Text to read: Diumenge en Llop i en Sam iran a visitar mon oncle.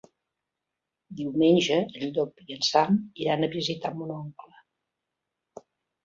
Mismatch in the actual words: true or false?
false